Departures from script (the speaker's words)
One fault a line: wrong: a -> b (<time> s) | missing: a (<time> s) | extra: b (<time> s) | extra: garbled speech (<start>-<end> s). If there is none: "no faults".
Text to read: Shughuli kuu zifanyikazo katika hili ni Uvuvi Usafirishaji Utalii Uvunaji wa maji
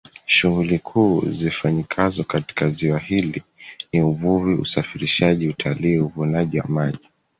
extra: ziwa (2.7 s)